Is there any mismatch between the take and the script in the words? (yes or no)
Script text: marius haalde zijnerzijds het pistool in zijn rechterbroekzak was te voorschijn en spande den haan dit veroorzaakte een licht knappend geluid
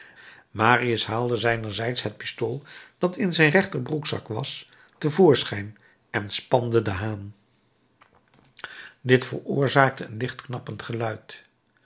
yes